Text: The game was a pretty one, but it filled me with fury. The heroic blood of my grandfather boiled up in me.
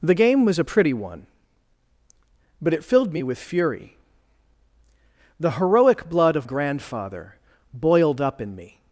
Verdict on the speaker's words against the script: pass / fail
fail